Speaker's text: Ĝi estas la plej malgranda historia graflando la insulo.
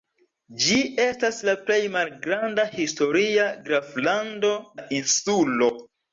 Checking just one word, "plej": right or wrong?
right